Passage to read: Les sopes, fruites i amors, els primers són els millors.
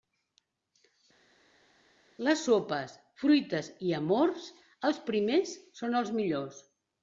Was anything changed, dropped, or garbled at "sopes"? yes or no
no